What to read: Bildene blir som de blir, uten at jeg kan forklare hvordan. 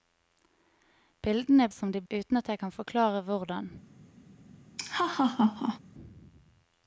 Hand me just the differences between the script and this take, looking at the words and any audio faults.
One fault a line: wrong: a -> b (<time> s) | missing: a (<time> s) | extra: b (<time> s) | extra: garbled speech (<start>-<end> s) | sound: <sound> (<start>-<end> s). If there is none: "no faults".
missing: blir (1.7 s)
missing: blir (2.0 s)
sound: laugh (4.8-5.8 s)